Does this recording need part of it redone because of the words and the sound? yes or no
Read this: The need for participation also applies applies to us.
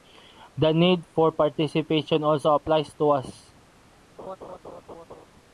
yes